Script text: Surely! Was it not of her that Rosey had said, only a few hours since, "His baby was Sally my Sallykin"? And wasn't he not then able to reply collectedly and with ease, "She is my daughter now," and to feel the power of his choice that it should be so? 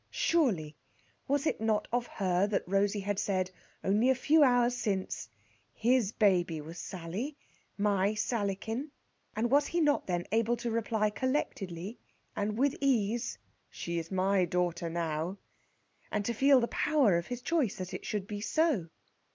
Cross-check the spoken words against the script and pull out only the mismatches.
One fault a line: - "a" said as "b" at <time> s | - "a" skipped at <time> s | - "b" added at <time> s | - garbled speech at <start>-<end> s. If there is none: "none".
- "wasn't" said as "was" at 9.5 s